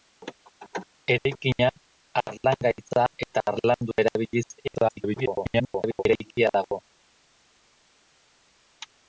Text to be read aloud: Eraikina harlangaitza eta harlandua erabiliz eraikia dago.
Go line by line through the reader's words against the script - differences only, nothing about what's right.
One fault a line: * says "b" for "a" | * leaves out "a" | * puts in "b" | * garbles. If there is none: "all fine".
* garbles